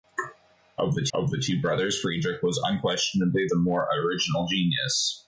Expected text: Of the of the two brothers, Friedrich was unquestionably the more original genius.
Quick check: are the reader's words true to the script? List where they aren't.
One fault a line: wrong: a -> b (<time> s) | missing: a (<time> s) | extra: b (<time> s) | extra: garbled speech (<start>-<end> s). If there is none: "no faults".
no faults